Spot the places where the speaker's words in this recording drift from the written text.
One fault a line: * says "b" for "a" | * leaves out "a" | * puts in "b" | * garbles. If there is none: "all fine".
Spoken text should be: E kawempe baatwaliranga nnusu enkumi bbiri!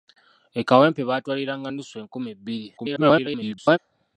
* garbles